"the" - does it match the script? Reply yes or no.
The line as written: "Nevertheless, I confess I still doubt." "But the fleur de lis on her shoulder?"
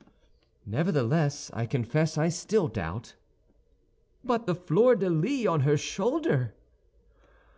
yes